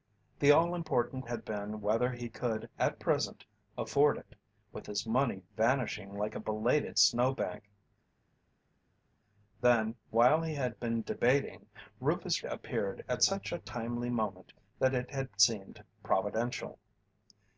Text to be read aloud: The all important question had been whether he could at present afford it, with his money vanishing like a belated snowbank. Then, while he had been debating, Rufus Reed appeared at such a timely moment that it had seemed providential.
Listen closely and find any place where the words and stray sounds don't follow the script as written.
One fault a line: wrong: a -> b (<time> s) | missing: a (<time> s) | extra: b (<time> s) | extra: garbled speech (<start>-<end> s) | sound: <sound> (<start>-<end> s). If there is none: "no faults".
missing: question (1.2 s)
missing: Reed (12.4 s)